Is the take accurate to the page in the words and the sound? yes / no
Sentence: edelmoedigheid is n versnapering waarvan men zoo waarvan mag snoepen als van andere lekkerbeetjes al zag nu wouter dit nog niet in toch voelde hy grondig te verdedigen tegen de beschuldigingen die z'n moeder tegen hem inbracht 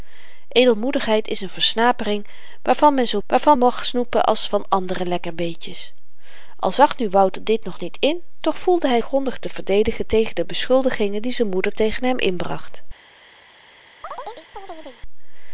no